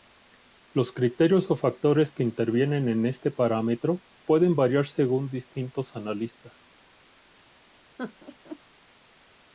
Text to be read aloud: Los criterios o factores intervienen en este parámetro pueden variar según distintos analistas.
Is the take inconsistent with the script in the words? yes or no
yes